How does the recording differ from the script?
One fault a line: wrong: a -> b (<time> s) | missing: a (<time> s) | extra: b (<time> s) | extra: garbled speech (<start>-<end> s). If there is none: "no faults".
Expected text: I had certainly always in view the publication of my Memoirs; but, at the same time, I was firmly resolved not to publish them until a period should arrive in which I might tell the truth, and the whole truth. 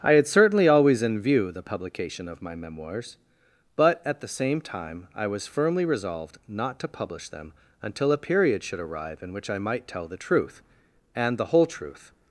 no faults